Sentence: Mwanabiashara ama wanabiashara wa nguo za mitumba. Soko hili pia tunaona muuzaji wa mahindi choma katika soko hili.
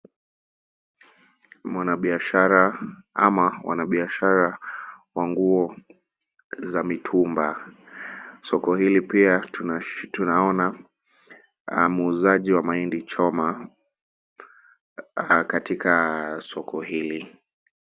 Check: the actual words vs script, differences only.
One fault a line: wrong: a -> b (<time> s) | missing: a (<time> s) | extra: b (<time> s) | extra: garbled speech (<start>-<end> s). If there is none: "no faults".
no faults